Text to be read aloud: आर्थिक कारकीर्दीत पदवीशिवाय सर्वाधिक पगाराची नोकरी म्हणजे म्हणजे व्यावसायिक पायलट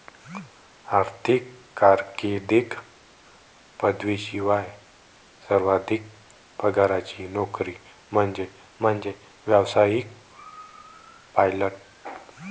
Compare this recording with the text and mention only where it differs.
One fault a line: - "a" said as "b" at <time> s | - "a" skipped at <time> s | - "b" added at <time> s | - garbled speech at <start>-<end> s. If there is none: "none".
none